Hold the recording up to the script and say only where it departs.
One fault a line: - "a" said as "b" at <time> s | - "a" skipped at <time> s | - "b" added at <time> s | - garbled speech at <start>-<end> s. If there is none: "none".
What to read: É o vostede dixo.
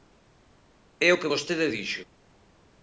- "que" added at 1.2 s